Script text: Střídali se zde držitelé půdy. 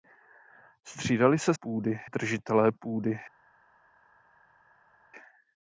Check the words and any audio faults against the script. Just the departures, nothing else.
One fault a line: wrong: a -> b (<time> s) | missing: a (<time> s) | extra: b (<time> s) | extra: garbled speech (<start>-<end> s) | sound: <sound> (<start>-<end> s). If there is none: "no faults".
wrong: zde -> půdy (1.5 s)